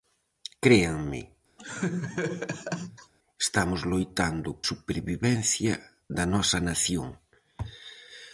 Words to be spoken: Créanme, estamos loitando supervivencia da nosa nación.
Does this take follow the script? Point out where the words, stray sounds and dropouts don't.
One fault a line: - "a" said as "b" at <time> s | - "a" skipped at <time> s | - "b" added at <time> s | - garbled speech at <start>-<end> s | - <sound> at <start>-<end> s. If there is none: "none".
- laugh at 1.6-3.1 s